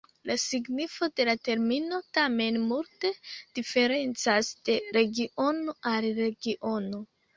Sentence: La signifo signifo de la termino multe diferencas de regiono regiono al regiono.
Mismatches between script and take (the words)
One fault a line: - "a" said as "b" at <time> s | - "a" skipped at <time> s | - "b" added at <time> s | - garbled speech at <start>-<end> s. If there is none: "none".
- "signifo" skipped at 1.1 s
- "tamen" added at 2.2 s
- "regiono" skipped at 5.8 s